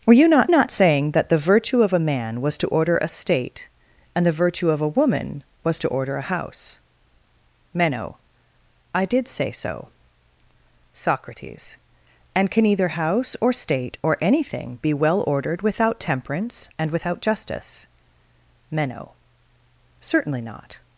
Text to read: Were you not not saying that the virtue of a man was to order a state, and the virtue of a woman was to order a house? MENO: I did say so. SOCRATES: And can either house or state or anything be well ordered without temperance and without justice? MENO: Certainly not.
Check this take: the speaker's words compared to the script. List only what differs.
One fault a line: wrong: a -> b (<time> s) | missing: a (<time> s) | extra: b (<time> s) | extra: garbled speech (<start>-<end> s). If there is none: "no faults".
no faults